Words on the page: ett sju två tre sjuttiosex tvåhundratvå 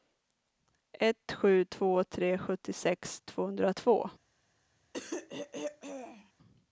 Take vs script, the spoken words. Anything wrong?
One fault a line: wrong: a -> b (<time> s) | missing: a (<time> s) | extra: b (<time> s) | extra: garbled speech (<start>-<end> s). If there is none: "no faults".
no faults